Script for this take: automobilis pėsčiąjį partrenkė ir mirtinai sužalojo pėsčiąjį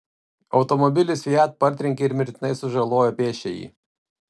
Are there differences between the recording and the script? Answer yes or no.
yes